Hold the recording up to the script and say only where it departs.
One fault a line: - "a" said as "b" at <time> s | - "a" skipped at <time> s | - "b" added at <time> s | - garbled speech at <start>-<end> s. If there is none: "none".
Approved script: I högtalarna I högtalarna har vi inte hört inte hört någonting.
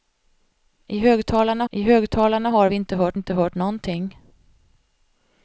none